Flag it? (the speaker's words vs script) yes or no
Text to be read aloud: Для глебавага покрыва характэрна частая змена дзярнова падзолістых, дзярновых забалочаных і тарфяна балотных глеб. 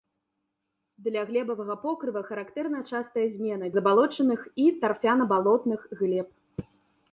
yes